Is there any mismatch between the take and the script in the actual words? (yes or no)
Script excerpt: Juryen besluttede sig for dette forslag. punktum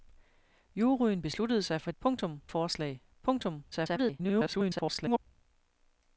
yes